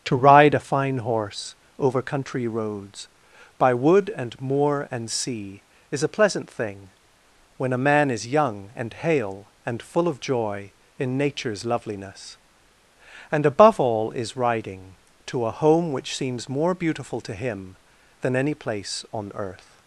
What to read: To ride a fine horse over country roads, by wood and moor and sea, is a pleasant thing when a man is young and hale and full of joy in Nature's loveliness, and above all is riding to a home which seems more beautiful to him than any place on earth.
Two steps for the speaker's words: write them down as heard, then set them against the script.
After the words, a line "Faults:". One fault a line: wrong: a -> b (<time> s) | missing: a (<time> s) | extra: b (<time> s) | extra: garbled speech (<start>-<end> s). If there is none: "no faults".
To ride a fine horse over country roads, by wood and moor and sea, is a pleasant thing when a man is young and hale and full of joy in Nature's loveliness, and above all is riding to a home which seems more beautiful to him than any place on earth.
Faults:
no faults